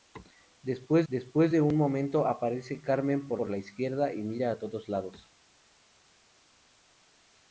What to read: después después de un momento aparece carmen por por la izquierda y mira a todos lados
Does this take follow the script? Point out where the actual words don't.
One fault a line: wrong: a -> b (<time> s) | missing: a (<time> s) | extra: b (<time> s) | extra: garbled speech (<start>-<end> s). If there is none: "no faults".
no faults